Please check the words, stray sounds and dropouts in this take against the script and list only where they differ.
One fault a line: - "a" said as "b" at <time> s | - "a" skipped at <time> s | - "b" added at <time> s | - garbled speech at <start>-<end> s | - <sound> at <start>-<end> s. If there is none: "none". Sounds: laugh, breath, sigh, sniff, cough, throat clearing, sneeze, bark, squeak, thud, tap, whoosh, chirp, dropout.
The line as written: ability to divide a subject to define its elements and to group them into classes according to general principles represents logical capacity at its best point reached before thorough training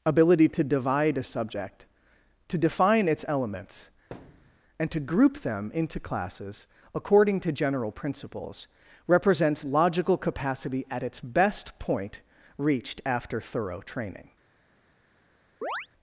- thud at 4.1-4.6 s
- "before" said as "after" at 13.1 s
- chirp at 15.6-15.9 s